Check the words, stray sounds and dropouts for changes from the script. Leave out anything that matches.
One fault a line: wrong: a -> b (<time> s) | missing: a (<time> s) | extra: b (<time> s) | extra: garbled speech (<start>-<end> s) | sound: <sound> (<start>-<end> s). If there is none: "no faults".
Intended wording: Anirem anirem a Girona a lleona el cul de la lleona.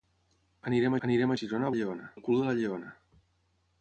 no faults